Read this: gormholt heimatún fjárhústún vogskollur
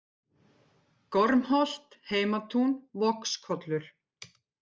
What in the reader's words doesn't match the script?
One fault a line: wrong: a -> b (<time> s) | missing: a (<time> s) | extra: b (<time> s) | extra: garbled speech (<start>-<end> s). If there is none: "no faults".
missing: fjárhústún (2.9 s)